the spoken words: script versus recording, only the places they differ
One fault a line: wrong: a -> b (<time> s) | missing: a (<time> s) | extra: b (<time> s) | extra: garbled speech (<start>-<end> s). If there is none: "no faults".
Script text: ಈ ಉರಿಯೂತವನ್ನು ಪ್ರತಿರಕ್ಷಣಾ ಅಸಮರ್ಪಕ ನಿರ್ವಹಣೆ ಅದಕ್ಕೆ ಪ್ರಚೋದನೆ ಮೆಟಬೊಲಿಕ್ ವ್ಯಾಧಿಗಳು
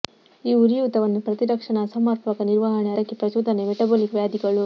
no faults